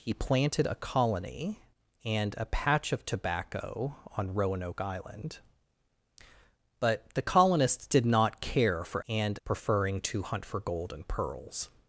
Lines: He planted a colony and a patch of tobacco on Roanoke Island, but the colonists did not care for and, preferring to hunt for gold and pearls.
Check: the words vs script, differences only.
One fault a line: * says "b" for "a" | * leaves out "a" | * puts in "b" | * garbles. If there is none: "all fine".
all fine